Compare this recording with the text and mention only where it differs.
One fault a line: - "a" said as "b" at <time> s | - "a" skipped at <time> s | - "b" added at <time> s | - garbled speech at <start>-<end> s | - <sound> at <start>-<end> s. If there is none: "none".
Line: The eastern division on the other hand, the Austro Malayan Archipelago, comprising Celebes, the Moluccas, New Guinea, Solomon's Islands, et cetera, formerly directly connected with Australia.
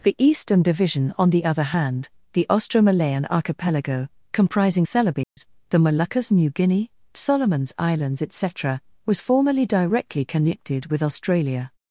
- dropout at 5.2-5.4 s
- "was" added at 9.1 s